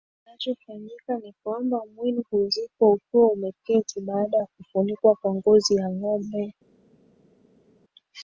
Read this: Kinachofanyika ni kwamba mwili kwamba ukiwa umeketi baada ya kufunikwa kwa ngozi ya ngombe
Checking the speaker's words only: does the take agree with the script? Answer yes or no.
no